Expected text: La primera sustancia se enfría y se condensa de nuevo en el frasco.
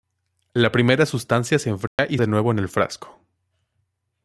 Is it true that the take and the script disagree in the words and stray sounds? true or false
true